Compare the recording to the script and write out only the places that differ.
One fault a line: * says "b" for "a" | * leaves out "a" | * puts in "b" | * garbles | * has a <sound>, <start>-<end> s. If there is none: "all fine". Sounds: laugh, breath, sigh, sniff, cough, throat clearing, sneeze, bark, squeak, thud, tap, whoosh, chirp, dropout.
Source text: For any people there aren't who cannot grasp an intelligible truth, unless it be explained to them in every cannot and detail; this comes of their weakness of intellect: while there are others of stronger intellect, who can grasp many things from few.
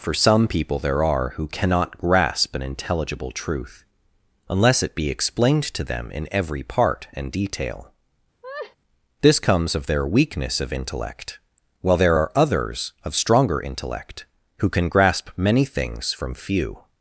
* says "some" for "any"
* says "are" for "aren't"
* says "part" for "cannot"
* has a laugh, 8.4-8.8 s